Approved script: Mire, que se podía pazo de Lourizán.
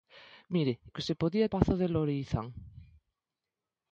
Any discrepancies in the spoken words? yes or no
no